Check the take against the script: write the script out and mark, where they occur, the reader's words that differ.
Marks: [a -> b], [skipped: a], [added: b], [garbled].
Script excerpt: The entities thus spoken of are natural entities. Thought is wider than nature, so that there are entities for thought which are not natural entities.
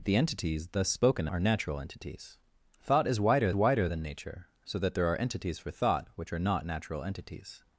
The entities thus spoken [skipped: of] are natural entities. Thought is wider [added: wider] than nature, so that there are entities for thought which are not natural entities.